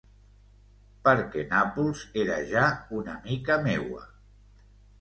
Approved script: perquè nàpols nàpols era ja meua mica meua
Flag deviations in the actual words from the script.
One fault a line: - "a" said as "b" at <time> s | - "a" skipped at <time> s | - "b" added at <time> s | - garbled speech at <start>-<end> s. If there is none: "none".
- "nàpols" skipped at 2.0 s
- "meua" said as "una" at 3.0 s